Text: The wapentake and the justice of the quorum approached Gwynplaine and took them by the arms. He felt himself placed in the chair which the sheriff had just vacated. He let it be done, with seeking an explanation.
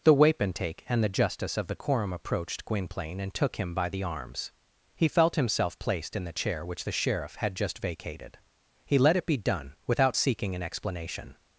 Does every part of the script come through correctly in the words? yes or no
no